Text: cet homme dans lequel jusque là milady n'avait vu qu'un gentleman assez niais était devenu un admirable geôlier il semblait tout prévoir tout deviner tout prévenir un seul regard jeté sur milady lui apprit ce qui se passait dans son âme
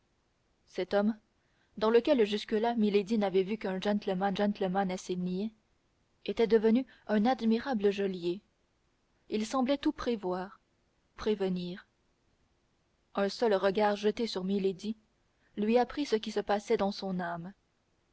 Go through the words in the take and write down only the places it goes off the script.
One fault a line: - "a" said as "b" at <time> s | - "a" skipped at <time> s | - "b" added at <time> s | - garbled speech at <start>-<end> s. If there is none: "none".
- "gentleman" added at 4.3 s
- "tout deviner tout" skipped at 10.6 s